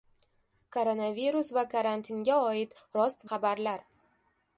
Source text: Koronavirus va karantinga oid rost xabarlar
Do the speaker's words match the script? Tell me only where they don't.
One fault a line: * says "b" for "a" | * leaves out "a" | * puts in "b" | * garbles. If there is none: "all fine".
all fine